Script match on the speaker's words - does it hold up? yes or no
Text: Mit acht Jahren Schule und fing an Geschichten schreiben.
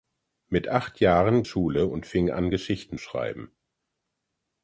yes